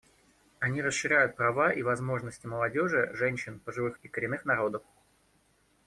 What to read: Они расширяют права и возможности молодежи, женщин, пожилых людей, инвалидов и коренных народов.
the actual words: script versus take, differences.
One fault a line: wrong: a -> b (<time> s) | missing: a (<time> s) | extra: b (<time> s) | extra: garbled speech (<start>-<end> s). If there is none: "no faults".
missing: людей инвалидов (4.0 s)